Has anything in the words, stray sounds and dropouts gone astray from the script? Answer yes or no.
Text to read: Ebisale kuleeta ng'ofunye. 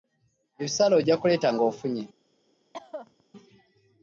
yes